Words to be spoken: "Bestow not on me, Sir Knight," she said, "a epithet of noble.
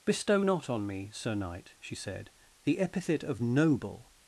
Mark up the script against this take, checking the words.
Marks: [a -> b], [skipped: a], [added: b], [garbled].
"Bestow not on me, Sir Knight," she said, ["a -> the] epithet of noble.